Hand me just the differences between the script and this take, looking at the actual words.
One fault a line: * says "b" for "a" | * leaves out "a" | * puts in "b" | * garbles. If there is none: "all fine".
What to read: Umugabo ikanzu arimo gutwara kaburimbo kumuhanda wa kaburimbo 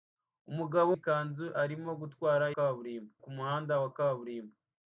all fine